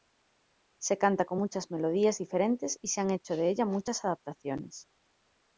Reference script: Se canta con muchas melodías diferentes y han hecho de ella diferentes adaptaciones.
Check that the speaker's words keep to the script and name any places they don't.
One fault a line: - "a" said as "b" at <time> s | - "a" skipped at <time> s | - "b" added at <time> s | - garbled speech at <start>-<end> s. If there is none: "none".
- "se" added at 2.9 s
- "diferentes" said as "muchas" at 3.6 s